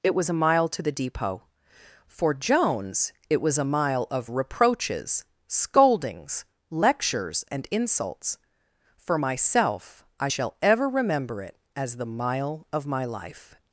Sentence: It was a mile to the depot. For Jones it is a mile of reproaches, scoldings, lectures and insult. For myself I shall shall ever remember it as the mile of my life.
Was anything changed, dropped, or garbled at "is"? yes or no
yes